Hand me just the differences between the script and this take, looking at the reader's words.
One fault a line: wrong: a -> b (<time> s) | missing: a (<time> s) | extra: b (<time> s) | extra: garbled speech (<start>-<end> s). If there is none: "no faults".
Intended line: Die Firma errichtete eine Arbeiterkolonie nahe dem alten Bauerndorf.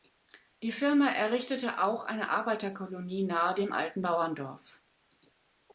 extra: auch (1.8 s)